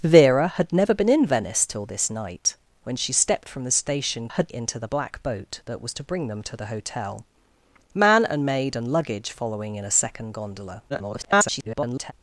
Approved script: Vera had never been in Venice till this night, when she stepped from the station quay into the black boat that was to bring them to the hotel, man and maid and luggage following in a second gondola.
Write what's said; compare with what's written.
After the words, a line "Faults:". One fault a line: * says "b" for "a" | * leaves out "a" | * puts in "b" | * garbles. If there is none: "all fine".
Vera had never been in Venice till this night, when she stepped from the station had into the black boat that was to bring them to the hotel, man and maid and luggage following in a second gondola. [garbled]
Faults:
* says "had" for "quay"
* garbles